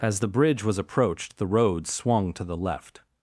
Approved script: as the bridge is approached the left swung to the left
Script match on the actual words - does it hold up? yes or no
no